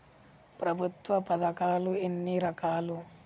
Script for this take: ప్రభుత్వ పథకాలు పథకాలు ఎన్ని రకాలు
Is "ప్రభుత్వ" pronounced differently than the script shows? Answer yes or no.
no